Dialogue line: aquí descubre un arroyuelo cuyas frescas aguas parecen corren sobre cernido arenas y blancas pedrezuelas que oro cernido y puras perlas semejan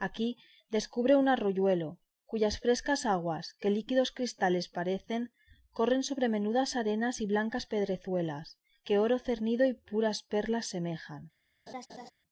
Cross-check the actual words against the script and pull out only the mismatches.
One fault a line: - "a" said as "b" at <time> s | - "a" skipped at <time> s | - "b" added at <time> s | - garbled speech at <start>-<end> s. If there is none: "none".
- "que líquidos cristales" added at 3.6 s
- "cernido" said as "menudas" at 6.3 s